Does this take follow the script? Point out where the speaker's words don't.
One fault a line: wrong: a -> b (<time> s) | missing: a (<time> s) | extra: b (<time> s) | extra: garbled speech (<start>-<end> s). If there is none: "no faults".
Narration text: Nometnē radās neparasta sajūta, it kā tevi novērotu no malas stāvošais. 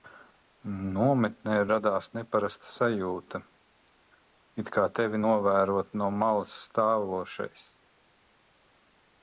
no faults